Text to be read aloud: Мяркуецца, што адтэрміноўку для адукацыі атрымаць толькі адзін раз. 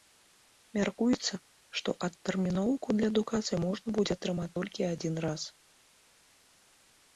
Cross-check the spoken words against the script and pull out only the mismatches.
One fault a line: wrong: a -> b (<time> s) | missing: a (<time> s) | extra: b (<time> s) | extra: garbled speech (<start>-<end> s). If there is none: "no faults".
extra: можна будзе (3.7 s)